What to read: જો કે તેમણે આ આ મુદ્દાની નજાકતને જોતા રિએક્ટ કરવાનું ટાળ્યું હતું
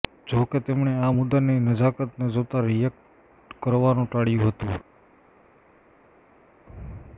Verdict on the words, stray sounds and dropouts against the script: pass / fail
fail